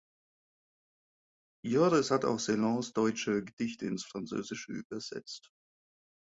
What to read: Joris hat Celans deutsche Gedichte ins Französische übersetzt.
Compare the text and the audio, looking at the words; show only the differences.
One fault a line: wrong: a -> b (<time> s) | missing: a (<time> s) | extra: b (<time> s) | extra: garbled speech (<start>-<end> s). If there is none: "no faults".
extra: auch (2.2 s)